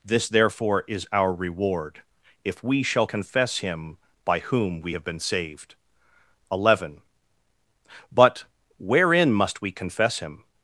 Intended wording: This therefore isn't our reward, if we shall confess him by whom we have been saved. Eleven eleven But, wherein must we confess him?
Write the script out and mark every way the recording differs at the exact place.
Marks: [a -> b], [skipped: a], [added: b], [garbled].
This therefore [isn't -> is] our reward, if we shall confess him by whom we have been saved. Eleven [skipped: eleven] But, wherein must we confess him?